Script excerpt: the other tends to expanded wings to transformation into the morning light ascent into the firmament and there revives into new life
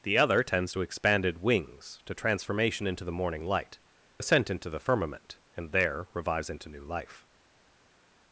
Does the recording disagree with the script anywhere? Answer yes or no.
no